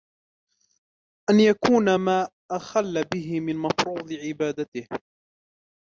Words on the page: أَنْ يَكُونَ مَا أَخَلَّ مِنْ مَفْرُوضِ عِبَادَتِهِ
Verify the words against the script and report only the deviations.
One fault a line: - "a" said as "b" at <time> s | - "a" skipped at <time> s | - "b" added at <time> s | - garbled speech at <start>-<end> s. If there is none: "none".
- "بِهِ" added at 3.0 s